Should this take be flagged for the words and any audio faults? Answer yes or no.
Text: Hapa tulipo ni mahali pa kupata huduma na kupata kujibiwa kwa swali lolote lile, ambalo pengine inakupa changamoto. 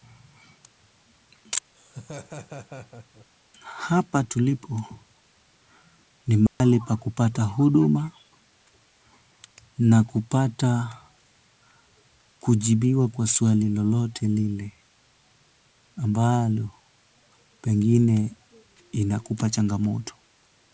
yes